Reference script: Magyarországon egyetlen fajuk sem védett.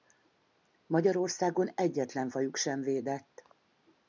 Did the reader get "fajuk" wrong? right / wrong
right